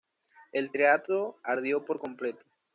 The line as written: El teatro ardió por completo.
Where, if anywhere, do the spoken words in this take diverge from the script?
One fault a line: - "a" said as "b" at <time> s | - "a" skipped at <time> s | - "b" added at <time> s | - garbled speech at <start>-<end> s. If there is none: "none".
none